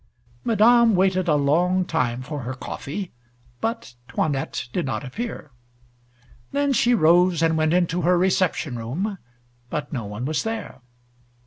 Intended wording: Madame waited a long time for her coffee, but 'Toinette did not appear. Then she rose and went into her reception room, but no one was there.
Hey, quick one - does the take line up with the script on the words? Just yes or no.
yes